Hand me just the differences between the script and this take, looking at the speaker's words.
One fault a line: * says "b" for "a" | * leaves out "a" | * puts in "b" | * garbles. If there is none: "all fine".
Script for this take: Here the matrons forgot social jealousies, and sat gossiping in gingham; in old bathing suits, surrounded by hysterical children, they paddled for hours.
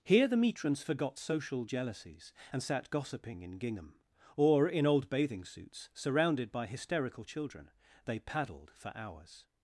* puts in "or"